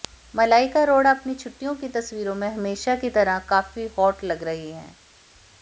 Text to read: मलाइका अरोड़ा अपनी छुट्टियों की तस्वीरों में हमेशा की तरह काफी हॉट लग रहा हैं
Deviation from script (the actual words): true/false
true